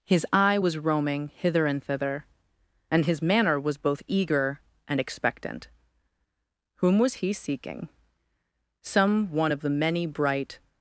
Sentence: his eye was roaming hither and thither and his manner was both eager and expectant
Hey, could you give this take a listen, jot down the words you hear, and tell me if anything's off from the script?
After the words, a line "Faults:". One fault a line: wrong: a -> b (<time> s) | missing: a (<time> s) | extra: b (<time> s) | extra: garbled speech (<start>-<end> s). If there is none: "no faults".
his eye was roaming hither and thither and his manner was both eager and expectant whom was he seeking some one of the many bright
Faults:
extra: whom was he seeking some one of the many bright (6.8 s)